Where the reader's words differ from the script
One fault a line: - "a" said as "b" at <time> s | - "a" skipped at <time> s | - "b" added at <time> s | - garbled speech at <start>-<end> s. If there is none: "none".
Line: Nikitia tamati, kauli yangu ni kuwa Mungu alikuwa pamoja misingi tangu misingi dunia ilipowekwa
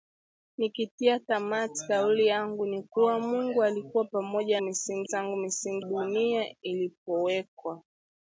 none